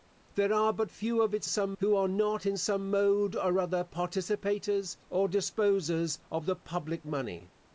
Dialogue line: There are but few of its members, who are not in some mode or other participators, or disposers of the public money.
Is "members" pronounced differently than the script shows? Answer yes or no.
yes